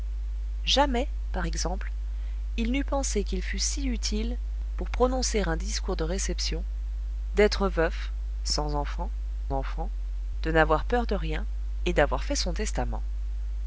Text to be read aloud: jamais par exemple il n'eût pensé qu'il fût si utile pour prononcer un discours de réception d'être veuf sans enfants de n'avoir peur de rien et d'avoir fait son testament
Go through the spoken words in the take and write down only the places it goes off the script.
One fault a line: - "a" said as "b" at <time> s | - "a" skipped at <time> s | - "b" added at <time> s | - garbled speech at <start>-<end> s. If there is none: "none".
- "enfants" added at 9.5 s